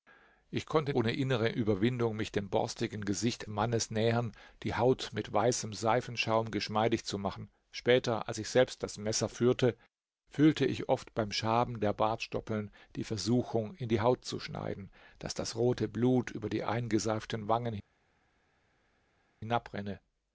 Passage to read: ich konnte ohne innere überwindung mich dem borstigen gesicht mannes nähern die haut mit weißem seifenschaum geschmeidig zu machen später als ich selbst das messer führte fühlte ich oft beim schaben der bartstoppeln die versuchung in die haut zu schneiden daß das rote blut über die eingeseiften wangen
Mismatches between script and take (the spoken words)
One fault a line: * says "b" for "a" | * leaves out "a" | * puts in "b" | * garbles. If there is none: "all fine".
all fine